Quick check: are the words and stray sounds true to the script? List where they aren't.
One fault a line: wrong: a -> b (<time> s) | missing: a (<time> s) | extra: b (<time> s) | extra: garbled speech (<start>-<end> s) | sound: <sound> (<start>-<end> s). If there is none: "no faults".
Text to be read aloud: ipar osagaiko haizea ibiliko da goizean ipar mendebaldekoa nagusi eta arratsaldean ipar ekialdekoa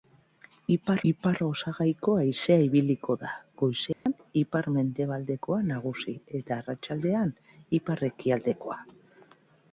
extra: ipar (1.1 s)
sound: dropout (3.9-4.1 s)